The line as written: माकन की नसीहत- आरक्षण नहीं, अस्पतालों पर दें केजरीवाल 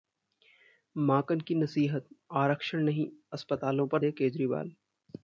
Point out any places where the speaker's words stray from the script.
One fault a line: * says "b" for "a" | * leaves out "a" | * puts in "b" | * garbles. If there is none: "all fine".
all fine